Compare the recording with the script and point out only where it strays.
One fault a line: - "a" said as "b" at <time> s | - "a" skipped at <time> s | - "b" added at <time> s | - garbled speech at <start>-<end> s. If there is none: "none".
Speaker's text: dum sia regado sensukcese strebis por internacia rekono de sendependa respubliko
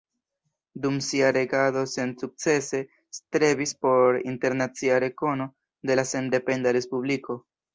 - "la" added at 5.9 s